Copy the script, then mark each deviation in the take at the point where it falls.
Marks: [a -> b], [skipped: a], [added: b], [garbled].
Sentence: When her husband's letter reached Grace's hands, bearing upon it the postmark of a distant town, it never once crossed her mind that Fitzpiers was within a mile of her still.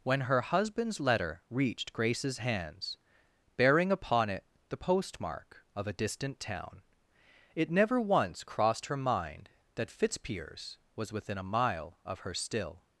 When her husband's letter reached Grace's hands, bearing upon it the postmark of a distant town, it never once crossed her mind that Fitzpiers was within a mile of her still.